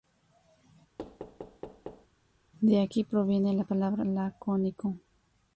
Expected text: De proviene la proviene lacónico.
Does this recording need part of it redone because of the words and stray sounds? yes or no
yes